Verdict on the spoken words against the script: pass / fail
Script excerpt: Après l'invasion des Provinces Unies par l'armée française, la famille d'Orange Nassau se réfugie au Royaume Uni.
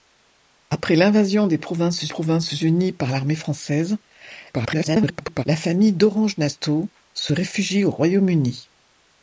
fail